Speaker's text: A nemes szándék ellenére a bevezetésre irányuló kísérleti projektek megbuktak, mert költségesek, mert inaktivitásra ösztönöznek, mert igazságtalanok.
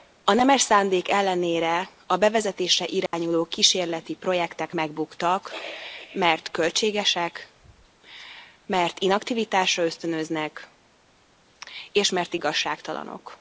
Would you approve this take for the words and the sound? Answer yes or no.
no